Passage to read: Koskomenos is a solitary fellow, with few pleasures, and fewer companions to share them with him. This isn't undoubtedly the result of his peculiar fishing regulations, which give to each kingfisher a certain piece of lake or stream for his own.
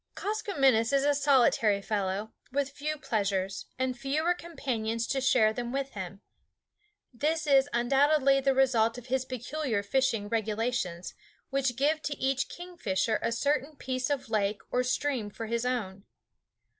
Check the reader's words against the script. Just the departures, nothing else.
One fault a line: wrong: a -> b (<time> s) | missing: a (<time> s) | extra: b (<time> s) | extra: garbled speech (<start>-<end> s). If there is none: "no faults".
wrong: isn't -> is (7.5 s)